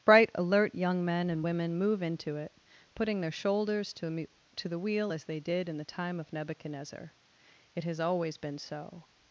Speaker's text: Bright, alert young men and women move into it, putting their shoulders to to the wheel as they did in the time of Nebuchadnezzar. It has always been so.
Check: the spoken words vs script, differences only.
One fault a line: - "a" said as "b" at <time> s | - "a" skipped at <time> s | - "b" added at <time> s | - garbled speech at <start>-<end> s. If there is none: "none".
none